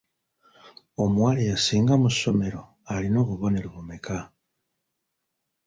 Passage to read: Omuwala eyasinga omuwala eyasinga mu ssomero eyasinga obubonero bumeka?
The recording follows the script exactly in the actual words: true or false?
false